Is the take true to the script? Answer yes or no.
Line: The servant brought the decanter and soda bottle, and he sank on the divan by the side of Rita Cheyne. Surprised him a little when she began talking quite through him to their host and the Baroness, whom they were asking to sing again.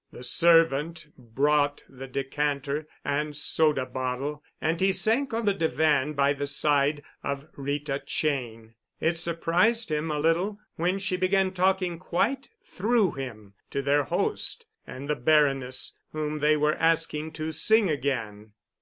no